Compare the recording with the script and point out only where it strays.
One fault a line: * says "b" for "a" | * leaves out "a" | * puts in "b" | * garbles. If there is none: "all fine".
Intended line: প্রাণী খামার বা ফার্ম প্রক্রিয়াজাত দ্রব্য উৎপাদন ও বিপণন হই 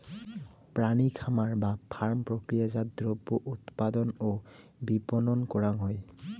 * puts in "করাং"